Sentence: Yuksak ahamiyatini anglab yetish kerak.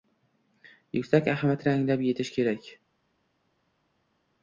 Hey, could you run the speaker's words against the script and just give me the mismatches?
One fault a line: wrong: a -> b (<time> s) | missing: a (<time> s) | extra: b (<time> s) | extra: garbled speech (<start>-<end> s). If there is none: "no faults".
no faults